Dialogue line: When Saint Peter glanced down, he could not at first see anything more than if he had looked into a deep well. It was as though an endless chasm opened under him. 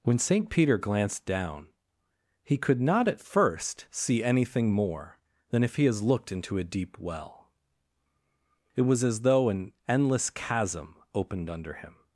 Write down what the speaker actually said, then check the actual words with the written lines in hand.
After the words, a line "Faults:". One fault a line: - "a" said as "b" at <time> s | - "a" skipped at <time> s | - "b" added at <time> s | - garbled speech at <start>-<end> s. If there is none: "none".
When Saint Peter glanced down, he could not at first see anything more than if he has looked into a deep well. It was as though an endless chasm opened under him.
Faults:
- "had" said as "has" at 5.8 s